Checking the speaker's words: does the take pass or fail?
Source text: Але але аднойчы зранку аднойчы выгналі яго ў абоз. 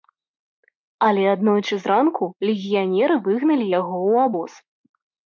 fail